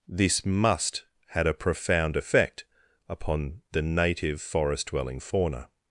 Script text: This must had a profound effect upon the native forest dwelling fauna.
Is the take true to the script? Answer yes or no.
yes